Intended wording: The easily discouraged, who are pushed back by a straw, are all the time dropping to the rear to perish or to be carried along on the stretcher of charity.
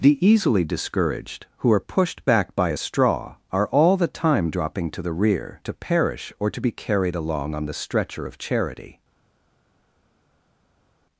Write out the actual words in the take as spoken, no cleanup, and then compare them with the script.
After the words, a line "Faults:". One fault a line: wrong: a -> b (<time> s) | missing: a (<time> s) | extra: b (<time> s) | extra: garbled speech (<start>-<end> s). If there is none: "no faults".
The easily discouraged, who are pushed back by a straw, are all the time dropping to the rear to perish or to be carried along on the stretcher of charity.
Faults:
no faults